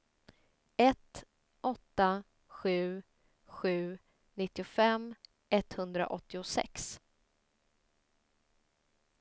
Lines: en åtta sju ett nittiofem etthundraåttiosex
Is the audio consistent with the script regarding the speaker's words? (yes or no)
no